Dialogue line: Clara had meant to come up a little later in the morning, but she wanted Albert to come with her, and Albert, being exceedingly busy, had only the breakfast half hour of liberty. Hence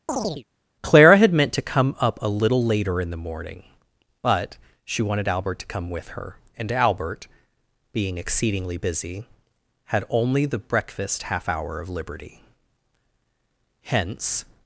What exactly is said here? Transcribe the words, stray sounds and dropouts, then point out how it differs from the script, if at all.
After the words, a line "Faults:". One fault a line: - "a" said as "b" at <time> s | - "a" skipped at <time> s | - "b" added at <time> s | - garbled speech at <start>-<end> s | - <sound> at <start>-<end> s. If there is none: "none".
Clara had meant to come up a little later in the morning, but she wanted Albert to come with her, and Albert, being exceedingly busy, had only the breakfast half hour of liberty. Hence
Faults:
- chirp at 0.1-0.4 s